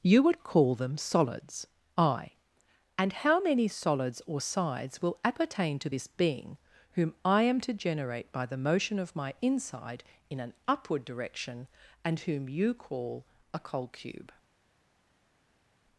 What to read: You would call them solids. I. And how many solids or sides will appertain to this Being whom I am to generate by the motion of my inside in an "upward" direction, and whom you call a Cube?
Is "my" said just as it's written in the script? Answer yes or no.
yes